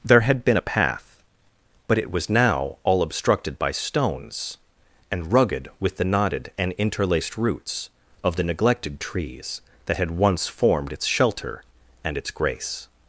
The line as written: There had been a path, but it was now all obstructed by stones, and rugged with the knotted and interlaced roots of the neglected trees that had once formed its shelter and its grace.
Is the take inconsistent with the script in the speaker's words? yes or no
no